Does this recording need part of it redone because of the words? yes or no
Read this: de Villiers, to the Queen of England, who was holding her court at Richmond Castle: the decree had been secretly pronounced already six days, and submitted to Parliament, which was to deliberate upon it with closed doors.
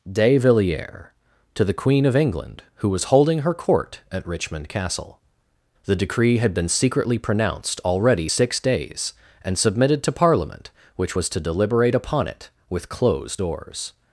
no